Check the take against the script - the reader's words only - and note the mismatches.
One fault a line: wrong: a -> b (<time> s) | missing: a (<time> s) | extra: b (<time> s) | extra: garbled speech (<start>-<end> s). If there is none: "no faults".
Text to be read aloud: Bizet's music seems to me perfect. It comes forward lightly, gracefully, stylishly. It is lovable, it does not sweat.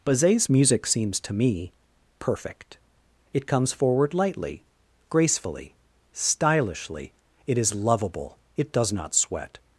no faults